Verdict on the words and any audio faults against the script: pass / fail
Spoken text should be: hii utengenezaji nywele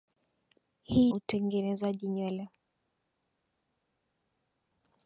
pass